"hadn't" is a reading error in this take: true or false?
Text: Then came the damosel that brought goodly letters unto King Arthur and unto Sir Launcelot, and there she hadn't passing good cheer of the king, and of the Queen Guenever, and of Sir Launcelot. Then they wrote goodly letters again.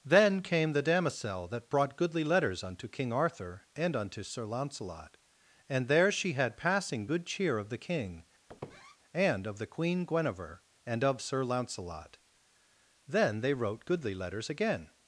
true